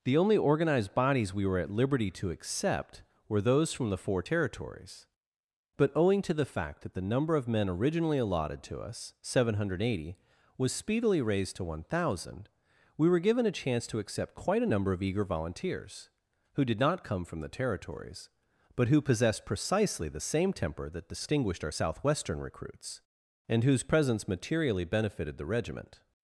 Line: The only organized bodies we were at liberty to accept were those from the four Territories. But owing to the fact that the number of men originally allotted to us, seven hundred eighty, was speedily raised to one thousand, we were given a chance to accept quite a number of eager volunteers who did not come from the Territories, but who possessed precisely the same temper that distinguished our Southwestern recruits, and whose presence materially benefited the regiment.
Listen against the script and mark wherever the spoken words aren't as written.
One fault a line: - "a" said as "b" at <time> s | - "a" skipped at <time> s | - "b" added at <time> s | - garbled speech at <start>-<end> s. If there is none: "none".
none